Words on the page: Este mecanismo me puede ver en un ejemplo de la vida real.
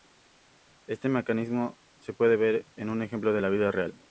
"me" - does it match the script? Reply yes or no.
no